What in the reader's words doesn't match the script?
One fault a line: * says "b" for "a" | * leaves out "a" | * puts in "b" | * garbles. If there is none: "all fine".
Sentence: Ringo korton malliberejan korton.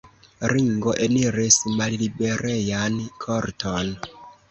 * says "eniris" for "korton"